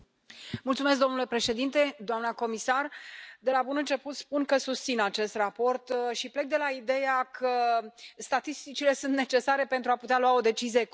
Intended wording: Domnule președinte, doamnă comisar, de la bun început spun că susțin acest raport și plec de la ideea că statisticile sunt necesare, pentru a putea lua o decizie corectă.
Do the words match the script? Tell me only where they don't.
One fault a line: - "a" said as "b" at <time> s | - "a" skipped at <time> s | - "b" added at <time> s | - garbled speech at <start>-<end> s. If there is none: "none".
none